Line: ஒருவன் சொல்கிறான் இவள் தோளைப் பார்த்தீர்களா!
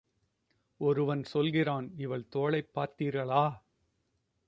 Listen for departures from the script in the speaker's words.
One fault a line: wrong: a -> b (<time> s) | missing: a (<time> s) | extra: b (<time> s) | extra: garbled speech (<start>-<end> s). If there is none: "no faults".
no faults